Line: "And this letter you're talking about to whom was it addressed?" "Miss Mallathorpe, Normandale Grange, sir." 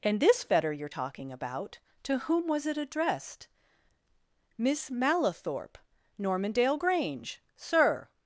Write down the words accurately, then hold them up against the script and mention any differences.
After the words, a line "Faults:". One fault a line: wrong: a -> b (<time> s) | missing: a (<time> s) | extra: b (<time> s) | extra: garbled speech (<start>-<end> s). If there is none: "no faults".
"And this fetter you're talking about to whom was it addressed?" "Miss Mallathorpe, Normandale Grange, sir."
Faults:
wrong: letter -> fetter (0.4 s)